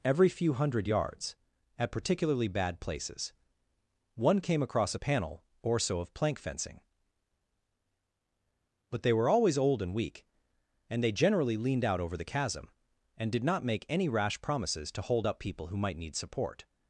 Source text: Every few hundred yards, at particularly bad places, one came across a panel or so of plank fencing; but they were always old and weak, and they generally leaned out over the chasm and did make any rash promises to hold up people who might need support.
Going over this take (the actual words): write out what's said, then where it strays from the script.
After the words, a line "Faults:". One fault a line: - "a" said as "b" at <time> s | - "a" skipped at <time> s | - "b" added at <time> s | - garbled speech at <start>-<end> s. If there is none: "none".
Every few hundred yards, at particularly bad places, one came across a panel or so of plank fencing; but they were always old and weak, and they generally leaned out over the chasm and did not make any rash promises to hold up people who might need support.
Faults:
- "not" added at 13.4 s